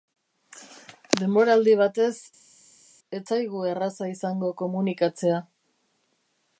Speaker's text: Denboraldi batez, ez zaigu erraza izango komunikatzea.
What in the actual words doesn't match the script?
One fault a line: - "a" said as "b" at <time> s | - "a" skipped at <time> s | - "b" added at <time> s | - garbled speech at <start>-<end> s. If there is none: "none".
none